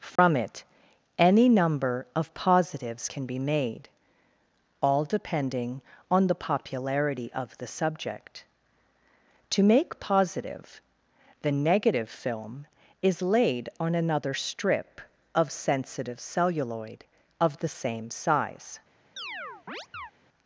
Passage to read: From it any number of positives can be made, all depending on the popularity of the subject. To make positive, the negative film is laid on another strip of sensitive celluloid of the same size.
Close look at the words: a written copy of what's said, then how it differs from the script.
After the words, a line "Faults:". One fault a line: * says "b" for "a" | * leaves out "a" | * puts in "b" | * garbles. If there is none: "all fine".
From it any number of positives can be made, all depending on the popularity of the subject. To make positive, the negative film is laid on another strip of sensitive celluloid of the same size.
Faults:
all fine